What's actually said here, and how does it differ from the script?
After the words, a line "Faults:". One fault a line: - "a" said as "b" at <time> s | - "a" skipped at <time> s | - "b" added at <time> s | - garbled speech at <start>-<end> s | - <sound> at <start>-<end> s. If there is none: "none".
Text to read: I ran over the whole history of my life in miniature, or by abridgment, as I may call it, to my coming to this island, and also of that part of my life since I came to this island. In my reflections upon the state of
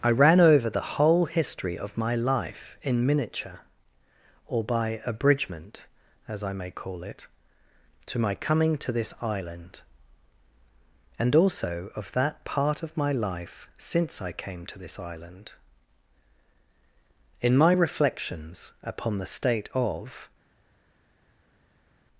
I ran over the whole history of my life in miniature, or by abridgment, as I may call it, to my coming to this island, and also of that part of my life since I came to this island. In my reflections upon the state of
Faults:
none